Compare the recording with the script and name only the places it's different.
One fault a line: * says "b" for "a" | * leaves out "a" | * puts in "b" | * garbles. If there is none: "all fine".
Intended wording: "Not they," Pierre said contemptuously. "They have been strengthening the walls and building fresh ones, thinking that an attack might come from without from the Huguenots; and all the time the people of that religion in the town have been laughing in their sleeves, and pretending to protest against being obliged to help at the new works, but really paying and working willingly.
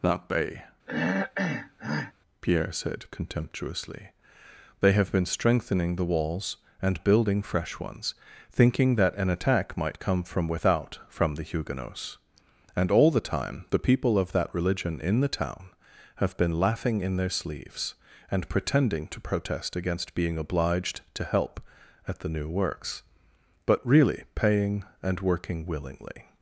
* says "That bay" for "Not they"